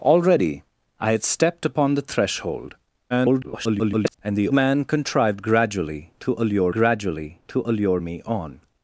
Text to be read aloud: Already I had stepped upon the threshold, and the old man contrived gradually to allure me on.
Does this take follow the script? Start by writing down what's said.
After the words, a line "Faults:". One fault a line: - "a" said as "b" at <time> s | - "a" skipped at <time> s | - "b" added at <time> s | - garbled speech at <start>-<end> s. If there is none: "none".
Already I had stepped upon the threshold, [garbled] and the man contrived gradually to allure gradually to allure me on.
Faults:
- garbled speech at 3.1-4.1 s
- "old" skipped at 4.5 s
- "gradually to allure" added at 6.7 s